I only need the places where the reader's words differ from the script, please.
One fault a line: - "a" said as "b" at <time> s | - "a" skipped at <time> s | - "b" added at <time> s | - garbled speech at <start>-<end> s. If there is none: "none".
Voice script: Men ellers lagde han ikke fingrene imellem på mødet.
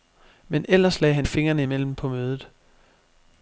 - "ikke" skipped at 1.3 s